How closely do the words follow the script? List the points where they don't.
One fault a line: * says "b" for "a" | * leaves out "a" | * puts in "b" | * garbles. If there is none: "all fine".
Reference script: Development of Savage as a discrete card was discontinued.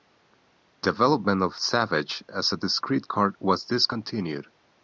all fine